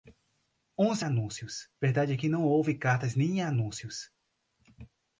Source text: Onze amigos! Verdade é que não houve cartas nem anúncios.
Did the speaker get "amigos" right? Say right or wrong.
wrong